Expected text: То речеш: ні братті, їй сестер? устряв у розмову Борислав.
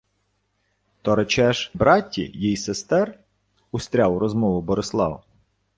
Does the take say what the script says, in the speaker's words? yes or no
no